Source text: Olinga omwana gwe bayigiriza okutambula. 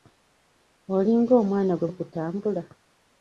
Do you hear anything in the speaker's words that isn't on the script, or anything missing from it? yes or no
yes